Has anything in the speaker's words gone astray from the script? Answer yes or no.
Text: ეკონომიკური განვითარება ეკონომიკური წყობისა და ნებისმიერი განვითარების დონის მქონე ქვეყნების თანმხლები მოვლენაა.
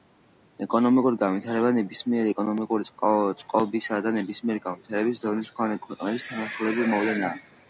yes